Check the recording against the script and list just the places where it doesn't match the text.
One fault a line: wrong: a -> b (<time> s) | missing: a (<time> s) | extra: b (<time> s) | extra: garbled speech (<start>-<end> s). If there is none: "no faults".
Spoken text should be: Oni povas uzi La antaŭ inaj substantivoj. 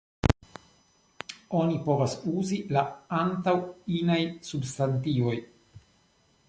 no faults